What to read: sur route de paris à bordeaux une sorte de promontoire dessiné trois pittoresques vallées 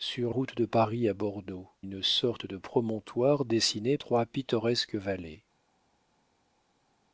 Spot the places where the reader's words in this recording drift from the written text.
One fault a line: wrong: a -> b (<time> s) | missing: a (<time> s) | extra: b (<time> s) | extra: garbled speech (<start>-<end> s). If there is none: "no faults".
no faults